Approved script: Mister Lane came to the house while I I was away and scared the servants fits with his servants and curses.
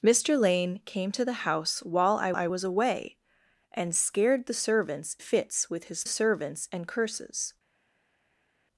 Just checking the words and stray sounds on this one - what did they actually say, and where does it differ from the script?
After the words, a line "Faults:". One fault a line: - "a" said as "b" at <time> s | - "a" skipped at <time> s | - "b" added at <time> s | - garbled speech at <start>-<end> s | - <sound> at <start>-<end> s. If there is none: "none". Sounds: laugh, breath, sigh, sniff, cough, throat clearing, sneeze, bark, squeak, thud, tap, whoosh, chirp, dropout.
Mister Lane came to the house while I I was away and scared the servants fits with his servants and curses.
Faults:
none